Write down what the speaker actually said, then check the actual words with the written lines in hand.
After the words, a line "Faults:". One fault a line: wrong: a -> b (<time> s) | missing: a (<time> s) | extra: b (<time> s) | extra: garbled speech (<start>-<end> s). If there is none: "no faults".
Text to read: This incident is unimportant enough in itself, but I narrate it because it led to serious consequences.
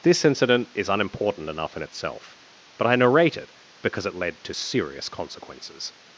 This incident is unimportant enough in itself, but I narrate it because it led to serious consequences.
Faults:
no faults